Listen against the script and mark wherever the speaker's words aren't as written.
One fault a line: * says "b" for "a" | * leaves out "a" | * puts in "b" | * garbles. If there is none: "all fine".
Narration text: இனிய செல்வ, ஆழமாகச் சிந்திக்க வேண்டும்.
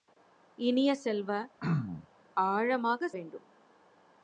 * leaves out "சிந்திக்க"